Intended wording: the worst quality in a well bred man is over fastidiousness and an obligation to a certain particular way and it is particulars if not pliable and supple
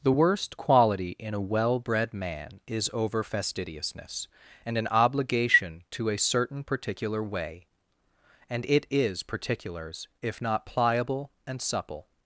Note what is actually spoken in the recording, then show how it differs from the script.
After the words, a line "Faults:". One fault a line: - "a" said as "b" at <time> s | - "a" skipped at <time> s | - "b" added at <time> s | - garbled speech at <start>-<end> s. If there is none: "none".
the worst quality in a well bred man is over fastidiousness and an obligation to a certain particular way and it is particulars if not pliable and supple
Faults:
none